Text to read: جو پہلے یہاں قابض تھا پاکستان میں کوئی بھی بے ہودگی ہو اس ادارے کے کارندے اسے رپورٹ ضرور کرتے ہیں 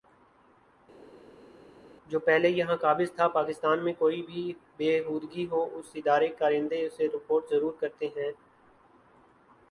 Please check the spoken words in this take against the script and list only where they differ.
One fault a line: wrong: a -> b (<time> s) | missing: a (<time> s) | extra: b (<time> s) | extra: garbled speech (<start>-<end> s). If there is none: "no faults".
no faults